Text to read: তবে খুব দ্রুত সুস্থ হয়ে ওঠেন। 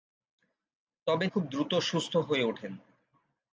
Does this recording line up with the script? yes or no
yes